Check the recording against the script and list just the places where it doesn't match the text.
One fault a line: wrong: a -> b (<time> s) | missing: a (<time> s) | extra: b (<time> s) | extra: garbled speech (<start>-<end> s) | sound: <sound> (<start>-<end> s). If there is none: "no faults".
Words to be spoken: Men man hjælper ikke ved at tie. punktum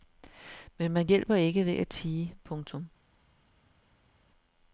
no faults